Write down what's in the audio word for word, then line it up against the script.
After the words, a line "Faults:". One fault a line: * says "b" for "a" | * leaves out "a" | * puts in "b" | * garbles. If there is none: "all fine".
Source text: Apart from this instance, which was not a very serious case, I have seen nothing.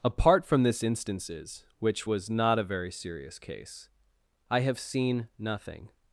Apart from this instances, which was not a very serious case, I have seen nothing.
Faults:
* says "instances" for "instance"